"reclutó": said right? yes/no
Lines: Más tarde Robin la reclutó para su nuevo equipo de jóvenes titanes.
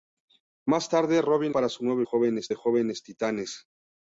no